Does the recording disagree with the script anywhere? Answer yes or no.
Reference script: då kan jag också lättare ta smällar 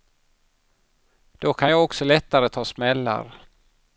no